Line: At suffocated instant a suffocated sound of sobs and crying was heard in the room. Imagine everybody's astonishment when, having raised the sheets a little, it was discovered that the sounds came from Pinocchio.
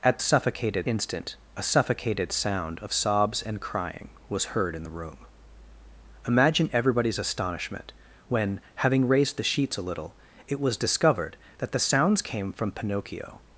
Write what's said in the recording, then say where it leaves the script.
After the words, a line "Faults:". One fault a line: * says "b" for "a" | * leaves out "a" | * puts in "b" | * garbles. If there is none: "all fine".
At suffocated instant a suffocated sound of sobs and crying was heard in the room. Imagine everybody's astonishment when, having raised the sheets a little, it was discovered that the sounds came from Pinocchio.
Faults:
all fine